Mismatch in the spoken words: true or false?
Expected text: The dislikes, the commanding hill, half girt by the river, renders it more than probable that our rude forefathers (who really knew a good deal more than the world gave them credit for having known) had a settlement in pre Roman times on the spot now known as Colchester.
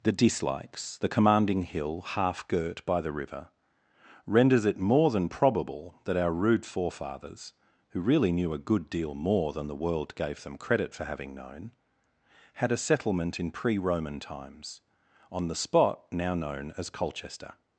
false